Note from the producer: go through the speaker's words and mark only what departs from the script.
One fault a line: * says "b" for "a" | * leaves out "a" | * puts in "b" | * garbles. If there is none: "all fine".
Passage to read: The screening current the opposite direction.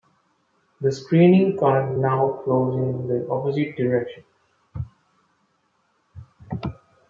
* puts in "now flows in"